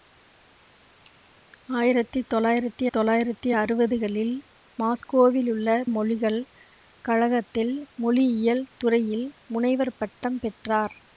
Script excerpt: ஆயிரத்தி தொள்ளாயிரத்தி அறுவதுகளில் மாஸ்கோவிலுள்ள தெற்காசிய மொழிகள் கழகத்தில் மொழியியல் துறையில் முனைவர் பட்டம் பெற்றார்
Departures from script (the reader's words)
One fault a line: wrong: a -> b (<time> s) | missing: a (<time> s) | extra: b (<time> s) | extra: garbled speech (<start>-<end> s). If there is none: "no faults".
extra: தொள்ளாயிரத்தி (2.9 s)
missing: தெற்காசிய (5.7 s)